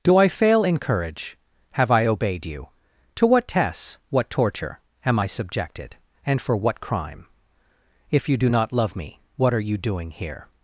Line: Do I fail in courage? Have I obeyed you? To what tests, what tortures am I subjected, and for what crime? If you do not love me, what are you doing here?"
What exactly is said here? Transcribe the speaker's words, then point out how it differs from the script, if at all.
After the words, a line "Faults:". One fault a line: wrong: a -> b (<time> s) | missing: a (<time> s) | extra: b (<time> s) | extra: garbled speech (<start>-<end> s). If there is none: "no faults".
Do I fail in courage? Have I obeyed you? To what tests, what torture am I subjected, and for what crime? If you do not love me, what are you doing here?"
Faults:
wrong: tortures -> torture (4.3 s)